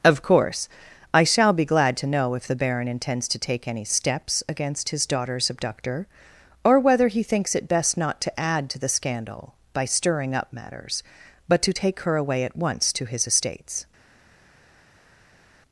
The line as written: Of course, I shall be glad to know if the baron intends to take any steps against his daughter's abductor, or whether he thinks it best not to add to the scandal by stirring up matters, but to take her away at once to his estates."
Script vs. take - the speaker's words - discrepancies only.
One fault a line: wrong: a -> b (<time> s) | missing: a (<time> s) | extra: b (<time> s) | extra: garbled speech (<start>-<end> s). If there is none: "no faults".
no faults